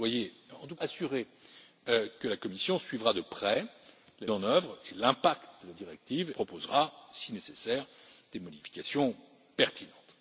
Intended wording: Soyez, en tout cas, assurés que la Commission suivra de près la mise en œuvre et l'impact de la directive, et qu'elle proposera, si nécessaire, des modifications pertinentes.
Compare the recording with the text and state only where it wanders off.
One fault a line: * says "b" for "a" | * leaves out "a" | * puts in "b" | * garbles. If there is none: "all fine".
* leaves out "cas"
* leaves out "mise"
* leaves out "et qu'elle"